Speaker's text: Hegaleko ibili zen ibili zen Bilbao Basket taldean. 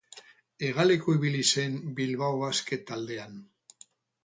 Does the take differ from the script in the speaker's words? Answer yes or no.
yes